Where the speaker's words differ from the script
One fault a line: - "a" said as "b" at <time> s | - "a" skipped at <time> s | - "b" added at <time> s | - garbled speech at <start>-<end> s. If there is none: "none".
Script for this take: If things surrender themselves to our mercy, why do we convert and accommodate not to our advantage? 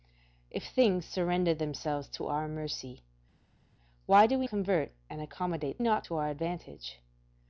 none